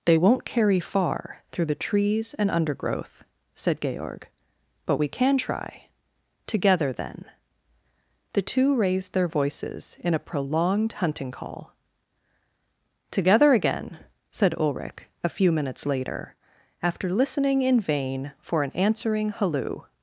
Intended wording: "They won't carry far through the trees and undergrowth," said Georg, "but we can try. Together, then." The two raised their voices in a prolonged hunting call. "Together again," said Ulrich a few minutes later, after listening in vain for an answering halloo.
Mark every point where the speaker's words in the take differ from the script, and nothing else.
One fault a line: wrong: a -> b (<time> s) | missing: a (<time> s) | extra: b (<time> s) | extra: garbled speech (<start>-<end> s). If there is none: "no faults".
no faults